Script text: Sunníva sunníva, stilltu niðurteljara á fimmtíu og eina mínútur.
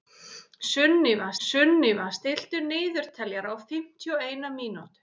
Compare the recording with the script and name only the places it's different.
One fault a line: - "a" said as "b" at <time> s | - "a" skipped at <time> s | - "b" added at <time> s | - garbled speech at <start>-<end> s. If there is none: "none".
none